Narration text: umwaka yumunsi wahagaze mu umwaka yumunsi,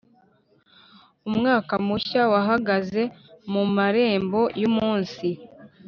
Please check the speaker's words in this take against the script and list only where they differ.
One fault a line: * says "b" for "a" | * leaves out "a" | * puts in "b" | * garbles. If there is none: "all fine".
* says "mushya" for "yumunsi"
* says "marembo" for "umwaka"